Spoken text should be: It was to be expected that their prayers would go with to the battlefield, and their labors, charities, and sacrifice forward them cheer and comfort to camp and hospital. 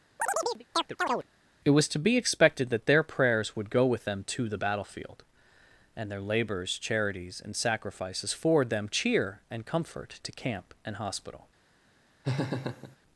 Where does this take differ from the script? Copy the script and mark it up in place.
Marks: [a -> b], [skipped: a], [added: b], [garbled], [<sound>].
[chirp] It was to be expected that their prayers would go with [added: them] to the battlefield, and their labors, charities, and [sacrifice -> sacrifices] forward them cheer and comfort to camp and hospital. [laugh]